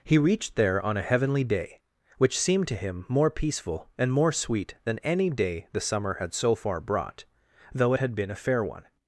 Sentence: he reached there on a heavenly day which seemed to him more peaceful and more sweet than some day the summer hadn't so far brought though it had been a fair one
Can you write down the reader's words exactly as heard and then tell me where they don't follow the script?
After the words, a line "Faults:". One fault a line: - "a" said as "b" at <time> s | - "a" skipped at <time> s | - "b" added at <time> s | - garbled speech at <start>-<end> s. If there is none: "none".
he reached there on a heavenly day which seemed to him more peaceful and more sweet than any day the summer had so far brought though it had been a fair one
Faults:
- "some" said as "any" at 5.0 s
- "hadn't" said as "had" at 6.2 s